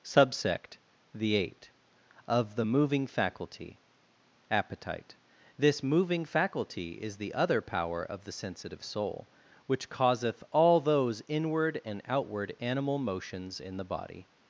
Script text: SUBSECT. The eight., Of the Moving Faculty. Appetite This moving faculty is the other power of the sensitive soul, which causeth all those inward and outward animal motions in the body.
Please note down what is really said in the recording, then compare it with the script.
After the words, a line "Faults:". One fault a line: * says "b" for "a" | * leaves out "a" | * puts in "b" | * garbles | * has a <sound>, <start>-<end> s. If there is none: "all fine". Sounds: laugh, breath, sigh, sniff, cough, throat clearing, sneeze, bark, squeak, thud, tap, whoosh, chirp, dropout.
SUBSECT. The eight., Of the Moving Faculty. Appetite This moving faculty is the other power of the sensitive soul, which causeth all those inward and outward animal motions in the body.
Faults:
all fine